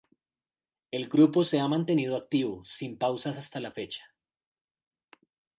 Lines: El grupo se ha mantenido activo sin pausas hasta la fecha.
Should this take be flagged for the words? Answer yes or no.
no